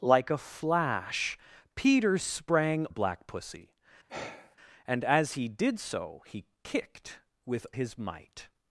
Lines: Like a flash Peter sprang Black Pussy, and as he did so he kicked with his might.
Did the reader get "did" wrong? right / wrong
right